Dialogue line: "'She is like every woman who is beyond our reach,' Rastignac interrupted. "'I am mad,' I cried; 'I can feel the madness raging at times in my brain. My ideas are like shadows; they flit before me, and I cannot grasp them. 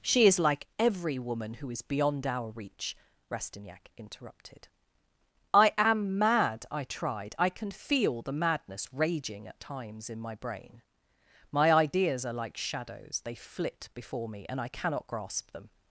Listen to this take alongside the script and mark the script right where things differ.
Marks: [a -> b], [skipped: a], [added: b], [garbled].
"'She is like every woman who is beyond our reach,' Rastignac interrupted. "'I am mad,' I [cried; -> tried] 'I can feel the madness raging at times in my brain. My ideas are like shadows; they flit before me, and I cannot grasp them.